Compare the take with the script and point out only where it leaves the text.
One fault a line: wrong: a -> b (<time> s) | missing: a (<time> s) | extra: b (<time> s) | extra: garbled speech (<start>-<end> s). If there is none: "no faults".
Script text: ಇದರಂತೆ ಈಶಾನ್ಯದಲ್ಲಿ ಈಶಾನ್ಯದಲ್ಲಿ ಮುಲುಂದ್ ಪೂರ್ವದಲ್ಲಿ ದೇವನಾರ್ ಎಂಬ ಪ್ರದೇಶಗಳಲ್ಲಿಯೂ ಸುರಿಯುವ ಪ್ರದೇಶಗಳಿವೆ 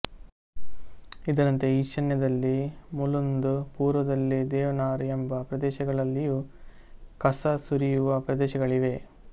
missing: ಈಶಾನ್ಯದಲ್ಲಿ (2.5 s)
extra: ಕಸ (7.2 s)